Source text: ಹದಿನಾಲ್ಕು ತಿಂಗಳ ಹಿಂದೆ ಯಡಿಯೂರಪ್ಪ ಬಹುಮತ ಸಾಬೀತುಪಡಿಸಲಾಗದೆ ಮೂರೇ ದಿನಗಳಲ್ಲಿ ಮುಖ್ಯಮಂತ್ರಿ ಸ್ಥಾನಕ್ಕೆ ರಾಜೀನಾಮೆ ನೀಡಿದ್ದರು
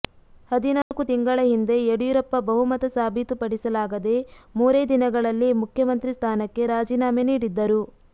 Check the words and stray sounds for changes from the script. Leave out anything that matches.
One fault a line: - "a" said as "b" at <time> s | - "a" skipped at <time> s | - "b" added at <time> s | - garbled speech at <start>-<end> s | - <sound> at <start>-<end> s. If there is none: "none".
- dropout at 0.8-0.9 s